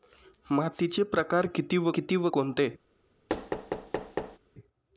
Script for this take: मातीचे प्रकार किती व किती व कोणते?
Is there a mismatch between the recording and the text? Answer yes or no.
no